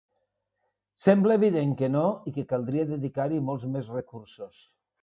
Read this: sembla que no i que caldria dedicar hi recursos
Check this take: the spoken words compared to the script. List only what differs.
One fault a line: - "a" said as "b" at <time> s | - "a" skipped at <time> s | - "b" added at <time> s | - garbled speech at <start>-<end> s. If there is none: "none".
- "evident" added at 1.4 s
- "molts més" added at 3.5 s